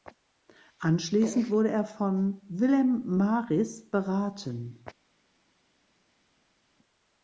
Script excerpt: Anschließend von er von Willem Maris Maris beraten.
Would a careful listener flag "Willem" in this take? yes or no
no